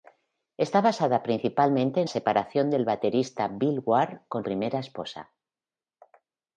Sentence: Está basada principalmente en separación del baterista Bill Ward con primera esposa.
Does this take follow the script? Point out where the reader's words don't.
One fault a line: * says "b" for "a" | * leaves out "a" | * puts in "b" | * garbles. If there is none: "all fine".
all fine